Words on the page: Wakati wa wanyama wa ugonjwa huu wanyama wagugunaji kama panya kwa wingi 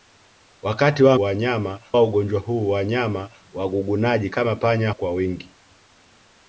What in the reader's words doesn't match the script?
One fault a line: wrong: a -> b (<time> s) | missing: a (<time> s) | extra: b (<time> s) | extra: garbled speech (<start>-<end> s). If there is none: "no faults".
no faults